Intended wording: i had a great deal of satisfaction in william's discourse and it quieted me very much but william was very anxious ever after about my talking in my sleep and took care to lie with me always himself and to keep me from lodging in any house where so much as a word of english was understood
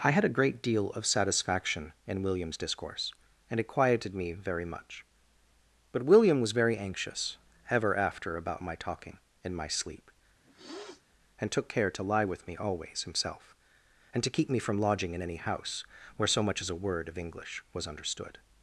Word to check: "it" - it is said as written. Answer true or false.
true